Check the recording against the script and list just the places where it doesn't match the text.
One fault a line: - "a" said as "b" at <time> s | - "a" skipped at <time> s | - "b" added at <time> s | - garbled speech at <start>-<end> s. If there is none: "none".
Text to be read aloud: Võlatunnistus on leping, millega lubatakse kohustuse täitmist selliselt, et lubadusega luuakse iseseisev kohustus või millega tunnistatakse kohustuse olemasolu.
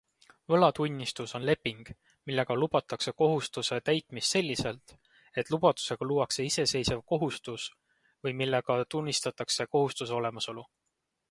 none